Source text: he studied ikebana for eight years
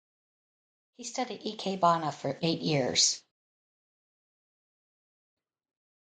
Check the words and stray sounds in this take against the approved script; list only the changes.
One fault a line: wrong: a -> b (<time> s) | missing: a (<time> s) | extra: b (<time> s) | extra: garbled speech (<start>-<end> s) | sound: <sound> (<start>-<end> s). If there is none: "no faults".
no faults